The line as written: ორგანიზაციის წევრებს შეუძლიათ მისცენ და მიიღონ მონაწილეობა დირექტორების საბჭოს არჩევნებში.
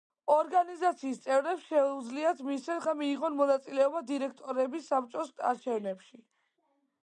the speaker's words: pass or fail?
pass